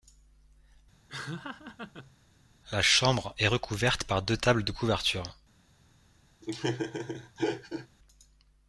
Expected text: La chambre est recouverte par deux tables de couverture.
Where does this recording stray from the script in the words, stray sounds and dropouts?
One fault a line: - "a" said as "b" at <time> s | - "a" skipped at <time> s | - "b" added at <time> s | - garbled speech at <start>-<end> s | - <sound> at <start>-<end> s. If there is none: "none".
- laugh at 1.1-2.2 s
- laugh at 6.4-7.9 s